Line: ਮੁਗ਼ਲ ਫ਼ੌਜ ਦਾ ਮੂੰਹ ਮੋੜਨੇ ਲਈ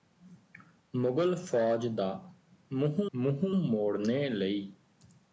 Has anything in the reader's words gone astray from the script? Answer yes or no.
yes